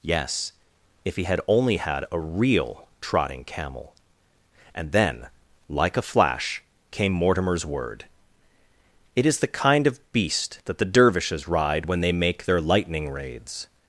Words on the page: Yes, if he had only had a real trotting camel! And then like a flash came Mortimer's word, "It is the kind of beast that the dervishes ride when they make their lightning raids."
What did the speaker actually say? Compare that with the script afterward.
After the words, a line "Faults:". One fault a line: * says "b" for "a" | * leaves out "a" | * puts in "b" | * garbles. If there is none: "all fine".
Yes, if he had only had a real trotting camel! And then like a flash came Mortimer's word, "It is the kind of beast that the dervishes ride when they make their lightning raids."
Faults:
all fine